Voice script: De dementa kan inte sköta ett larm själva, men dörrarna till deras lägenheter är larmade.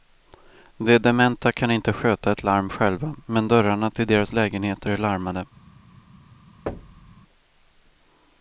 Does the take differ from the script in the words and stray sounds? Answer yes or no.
yes